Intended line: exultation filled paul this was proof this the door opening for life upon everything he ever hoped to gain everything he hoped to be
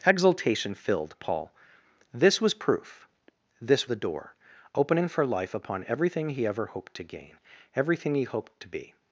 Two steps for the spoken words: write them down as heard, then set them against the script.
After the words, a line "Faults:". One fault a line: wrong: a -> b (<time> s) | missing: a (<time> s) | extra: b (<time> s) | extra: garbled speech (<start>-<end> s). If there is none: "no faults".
exultation filled paul this was proof this the door opening for life upon everything he ever hoped to gain everything he hoped to be
Faults:
no faults